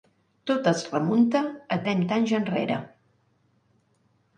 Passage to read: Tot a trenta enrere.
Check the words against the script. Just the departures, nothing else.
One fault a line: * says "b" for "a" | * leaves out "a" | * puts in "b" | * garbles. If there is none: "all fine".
* puts in "es remunta"
* puts in "anys"